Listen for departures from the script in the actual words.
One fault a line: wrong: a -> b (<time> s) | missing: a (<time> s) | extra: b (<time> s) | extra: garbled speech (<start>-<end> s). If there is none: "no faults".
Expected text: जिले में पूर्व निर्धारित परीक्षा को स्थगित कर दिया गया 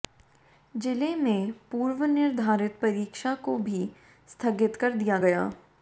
extra: भी (3.6 s)